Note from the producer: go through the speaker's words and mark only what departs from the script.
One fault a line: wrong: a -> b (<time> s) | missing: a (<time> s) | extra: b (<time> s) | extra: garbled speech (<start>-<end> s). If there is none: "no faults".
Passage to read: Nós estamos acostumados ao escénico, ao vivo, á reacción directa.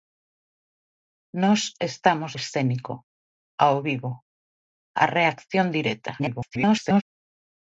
missing: acostumados ao (2.3 s)
extra: garbled speech (6.2-7.0 s)